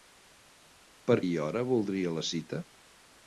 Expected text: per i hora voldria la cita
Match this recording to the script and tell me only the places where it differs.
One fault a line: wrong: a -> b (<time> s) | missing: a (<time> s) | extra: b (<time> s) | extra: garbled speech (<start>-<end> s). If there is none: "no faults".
no faults